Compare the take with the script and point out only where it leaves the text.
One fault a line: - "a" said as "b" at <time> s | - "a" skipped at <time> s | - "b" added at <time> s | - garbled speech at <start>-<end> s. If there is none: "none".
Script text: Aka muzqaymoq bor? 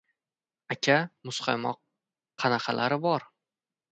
- "qanaqalari" added at 2.4 s